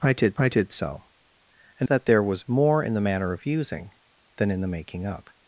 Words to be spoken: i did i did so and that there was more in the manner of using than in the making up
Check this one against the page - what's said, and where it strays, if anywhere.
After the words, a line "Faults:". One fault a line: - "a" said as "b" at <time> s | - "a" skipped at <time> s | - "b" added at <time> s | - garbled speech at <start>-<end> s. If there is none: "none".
i did i did so and that there was more in the manner of using than in the making up
Faults:
none